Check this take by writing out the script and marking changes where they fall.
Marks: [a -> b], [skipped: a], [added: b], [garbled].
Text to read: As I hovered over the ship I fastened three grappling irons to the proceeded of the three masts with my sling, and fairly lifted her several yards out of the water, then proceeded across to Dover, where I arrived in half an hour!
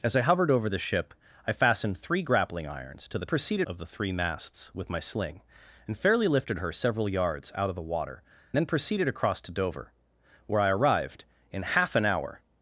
As I hovered over the ship I fastened three grappling irons to the proceeded of the three masts with my sling, and fairly lifted her several yards out of the water, then proceeded across to Dover, where I arrived in half an hour!